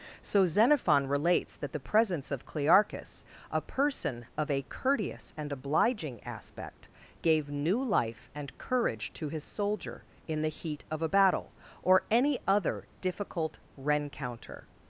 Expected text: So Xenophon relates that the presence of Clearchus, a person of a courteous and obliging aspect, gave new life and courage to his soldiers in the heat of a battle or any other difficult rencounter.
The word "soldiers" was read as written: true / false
false